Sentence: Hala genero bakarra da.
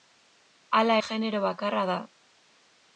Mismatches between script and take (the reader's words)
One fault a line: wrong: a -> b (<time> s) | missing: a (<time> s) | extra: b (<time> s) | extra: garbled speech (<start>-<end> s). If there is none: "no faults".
no faults